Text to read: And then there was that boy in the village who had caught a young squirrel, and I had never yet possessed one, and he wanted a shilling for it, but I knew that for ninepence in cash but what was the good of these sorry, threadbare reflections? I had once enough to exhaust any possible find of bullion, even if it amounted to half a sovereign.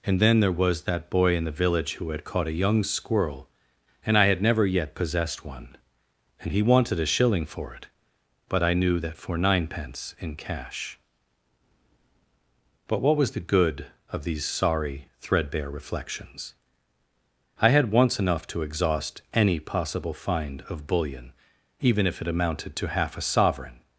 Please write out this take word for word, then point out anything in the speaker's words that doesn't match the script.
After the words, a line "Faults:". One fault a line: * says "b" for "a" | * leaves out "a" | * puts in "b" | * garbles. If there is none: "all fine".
And then there was that boy in the village who had caught a young squirrel, and I had never yet possessed one, and he wanted a shilling for it, but I knew that for ninepence in cash but what was the good of these sorry, threadbare reflections? I had once enough to exhaust any possible find of bullion, even if it amounted to half a sovereign.
Faults:
all fine